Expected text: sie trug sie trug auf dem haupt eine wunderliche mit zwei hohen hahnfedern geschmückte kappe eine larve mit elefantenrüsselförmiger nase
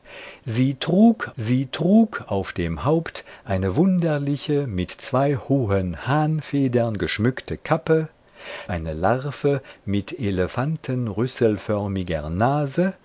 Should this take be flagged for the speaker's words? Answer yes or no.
no